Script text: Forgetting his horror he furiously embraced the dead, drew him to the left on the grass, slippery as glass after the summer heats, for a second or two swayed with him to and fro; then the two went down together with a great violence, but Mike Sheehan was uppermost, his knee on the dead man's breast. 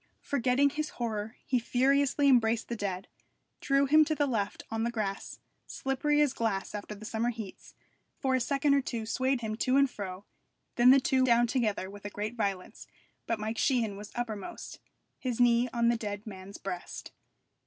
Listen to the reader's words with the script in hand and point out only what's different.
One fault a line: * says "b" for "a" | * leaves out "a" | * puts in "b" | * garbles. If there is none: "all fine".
* leaves out "with"
* leaves out "went"